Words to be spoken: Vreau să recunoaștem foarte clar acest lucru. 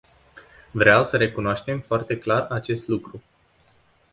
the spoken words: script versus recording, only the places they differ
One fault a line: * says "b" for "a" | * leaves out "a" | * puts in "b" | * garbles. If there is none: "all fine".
all fine